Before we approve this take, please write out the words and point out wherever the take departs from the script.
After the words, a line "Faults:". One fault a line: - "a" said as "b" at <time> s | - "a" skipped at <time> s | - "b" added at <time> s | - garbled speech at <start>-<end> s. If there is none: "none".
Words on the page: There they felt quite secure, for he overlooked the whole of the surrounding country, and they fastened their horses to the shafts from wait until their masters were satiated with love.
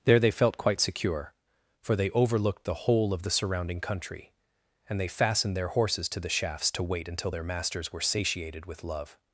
There they felt quite secure, for they overlooked the whole of the surrounding country, and they fastened their horses to the shafts to wait until their masters were satiated with love.
Faults:
- "he" said as "they" at 1.9 s
- "from" said as "to" at 6.7 s